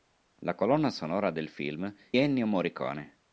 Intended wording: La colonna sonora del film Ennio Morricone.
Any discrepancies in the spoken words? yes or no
no